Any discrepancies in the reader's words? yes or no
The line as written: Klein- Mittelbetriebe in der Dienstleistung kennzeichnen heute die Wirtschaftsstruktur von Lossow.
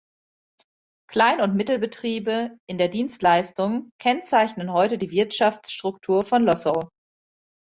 yes